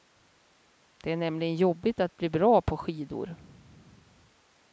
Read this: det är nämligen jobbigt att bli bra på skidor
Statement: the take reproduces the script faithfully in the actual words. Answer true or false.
true